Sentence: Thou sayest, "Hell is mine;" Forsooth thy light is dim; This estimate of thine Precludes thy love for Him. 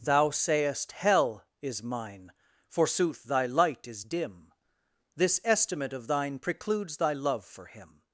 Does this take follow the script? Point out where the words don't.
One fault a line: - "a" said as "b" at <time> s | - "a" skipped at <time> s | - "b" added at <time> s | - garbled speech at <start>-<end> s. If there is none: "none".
none